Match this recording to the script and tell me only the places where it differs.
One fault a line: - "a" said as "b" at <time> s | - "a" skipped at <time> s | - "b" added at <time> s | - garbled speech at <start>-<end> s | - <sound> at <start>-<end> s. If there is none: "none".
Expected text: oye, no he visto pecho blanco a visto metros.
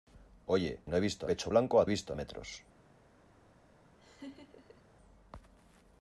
- laugh at 4.0-4.8 s